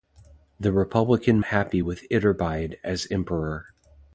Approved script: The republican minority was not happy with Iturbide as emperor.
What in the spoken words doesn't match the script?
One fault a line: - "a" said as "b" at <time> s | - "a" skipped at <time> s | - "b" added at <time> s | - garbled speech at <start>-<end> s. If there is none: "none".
- "minority was not" skipped at 1.4 s